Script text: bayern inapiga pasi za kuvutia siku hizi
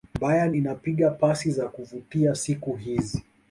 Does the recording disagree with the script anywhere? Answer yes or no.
no